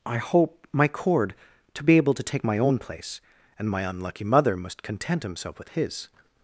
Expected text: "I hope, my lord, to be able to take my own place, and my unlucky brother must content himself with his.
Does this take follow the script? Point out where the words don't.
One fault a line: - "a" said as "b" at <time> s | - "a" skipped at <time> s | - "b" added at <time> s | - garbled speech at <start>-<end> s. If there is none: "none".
- "lord" said as "cord" at 0.9 s
- "brother" said as "mother" at 4.2 s